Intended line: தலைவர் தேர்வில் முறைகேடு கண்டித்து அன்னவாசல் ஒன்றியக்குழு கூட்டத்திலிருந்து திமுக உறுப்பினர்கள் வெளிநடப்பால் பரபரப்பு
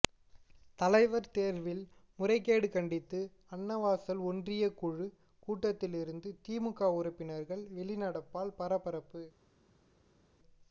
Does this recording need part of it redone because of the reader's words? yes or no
no